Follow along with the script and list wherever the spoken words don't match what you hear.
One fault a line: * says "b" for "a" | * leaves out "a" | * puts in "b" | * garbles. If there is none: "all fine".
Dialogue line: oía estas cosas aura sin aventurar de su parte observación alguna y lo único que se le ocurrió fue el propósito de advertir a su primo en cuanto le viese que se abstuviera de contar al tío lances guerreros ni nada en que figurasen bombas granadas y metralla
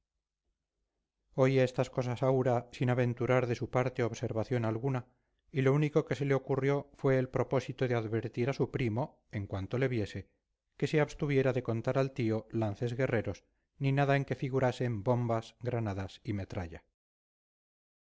all fine